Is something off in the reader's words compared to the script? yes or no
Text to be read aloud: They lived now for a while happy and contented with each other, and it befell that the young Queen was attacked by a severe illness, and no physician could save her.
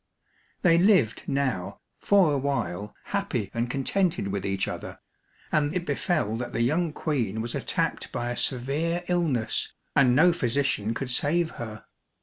no